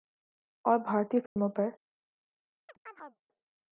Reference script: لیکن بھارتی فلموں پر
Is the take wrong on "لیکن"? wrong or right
wrong